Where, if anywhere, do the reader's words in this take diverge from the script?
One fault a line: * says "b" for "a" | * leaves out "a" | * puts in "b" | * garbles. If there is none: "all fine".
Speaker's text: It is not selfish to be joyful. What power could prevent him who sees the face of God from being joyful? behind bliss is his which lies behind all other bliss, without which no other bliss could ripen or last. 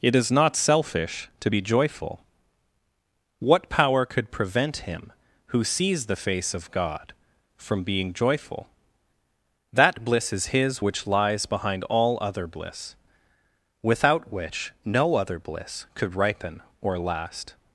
* says "that" for "behind"